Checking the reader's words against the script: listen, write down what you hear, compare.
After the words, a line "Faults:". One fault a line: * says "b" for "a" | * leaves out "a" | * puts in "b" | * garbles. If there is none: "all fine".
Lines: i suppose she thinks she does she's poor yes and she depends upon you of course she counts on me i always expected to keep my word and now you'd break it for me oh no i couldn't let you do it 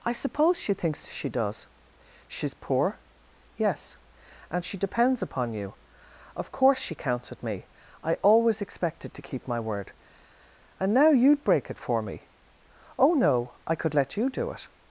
i suppose she thinks she does she's poor yes and she depends upon you of course she counts at me i always expected to keep my word and now you'd break it for me oh no i could let you do it
Faults:
* says "at" for "on"
* says "could" for "couldn't"